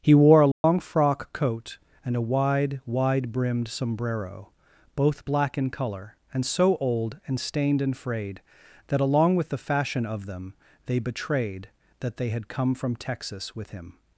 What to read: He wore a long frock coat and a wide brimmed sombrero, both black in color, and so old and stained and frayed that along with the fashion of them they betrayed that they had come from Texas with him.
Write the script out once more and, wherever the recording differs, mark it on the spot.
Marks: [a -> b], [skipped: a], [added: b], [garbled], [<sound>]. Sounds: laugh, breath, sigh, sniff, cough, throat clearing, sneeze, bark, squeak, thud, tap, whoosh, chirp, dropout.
He wore a long [dropout] frock coat and a wide [added: wide] brimmed sombrero, both black in color, and so old and stained and frayed that along with the fashion of them they betrayed that they had come from Texas with him.